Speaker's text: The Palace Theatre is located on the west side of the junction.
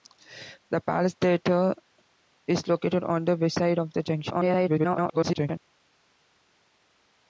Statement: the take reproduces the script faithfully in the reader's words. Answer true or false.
false